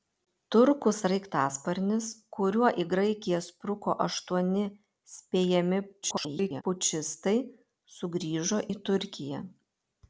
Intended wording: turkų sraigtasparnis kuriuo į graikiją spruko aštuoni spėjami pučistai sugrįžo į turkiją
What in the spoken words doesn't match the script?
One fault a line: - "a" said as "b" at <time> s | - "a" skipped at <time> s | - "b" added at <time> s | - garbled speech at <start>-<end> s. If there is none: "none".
- garbled speech at 6.0-6.6 s